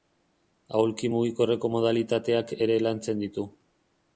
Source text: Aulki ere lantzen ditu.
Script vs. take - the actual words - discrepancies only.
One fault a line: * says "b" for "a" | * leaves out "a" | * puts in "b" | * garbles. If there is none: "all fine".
* puts in "mugikorreko modalitateak"